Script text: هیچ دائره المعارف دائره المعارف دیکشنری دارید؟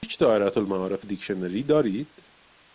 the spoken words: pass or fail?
fail